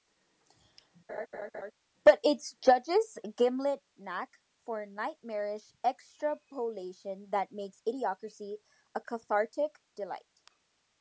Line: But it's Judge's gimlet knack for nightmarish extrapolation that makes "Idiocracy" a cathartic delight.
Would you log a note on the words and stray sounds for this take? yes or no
yes